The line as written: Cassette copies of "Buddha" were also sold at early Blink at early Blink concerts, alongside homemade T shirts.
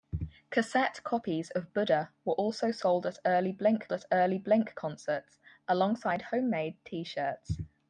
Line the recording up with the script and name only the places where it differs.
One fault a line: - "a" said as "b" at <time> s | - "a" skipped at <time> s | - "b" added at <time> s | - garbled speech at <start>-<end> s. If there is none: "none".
none